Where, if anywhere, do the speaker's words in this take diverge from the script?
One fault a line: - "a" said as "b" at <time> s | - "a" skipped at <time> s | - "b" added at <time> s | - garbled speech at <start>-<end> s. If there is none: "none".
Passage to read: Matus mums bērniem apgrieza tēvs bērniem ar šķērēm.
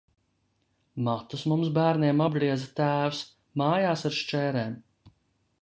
- "bērniem" said as "mājās" at 3.6 s